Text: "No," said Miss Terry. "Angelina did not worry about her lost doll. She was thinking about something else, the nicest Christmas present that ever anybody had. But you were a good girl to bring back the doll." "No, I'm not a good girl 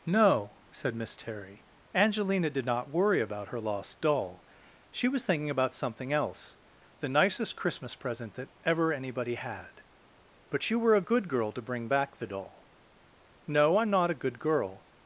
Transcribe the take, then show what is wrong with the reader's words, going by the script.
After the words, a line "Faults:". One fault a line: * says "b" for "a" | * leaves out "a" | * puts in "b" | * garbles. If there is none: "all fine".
"No," said Miss Terry. "Angelina did not worry about her lost doll. She was thinking about something else, the nicest Christmas present that ever anybody had. But you were a good girl to bring back the doll." "No, I'm not a good girl
Faults:
all fine